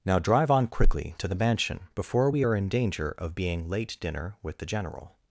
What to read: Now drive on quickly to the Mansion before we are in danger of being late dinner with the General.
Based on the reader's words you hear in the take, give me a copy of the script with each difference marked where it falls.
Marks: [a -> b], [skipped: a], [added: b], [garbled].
Now drive on quickly to the Mansion before we are in danger of being late dinner with the General.